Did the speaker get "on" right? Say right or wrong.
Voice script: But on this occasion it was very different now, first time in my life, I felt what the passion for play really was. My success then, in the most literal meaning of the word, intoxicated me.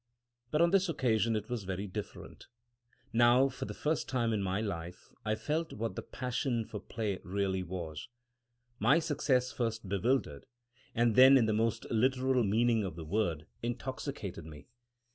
right